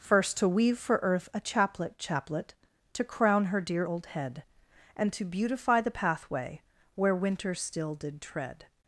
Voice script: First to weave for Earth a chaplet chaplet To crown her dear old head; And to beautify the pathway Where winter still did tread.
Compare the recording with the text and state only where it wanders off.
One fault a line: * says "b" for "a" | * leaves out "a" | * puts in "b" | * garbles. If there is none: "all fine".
all fine